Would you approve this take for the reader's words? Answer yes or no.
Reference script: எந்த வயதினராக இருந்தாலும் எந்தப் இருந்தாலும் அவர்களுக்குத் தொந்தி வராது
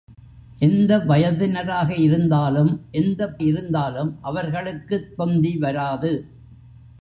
yes